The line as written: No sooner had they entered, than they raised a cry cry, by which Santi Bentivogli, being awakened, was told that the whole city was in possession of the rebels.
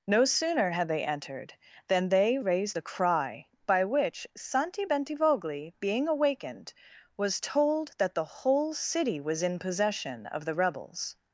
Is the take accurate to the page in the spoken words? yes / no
no